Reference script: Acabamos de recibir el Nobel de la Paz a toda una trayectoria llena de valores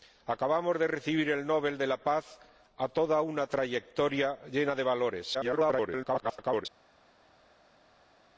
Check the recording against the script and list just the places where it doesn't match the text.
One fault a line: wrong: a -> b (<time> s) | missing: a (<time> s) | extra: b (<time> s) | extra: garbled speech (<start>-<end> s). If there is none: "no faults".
extra: garbled speech (5.3-6.7 s)